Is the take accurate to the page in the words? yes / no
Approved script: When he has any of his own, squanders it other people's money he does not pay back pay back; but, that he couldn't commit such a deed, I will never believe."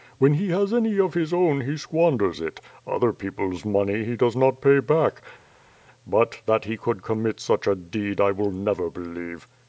no